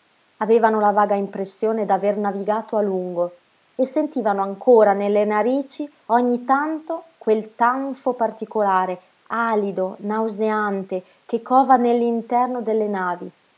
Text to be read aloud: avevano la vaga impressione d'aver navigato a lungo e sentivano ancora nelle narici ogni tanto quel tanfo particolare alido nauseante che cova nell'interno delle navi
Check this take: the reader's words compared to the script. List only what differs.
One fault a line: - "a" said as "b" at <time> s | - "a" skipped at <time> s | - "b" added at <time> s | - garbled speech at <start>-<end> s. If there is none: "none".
none